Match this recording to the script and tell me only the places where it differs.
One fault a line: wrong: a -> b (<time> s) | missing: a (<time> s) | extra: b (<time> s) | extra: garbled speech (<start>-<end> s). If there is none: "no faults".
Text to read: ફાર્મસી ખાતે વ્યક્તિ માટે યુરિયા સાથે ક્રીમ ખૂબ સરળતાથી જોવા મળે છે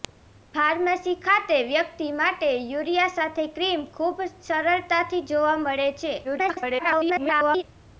extra: garbled speech (6.2-7.6 s)